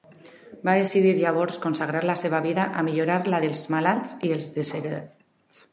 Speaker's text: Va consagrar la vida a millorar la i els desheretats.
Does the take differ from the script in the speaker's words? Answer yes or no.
yes